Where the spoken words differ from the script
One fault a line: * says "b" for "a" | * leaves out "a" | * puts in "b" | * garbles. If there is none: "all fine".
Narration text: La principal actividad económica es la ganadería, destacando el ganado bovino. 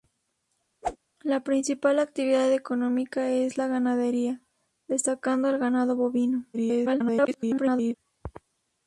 * garbles